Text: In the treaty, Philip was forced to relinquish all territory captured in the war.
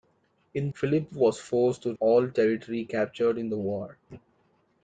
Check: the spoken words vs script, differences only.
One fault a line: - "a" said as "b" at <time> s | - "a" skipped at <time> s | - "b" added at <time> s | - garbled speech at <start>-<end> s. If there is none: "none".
- "the treaty" skipped at 0.7 s
- "relinquish" skipped at 1.9 s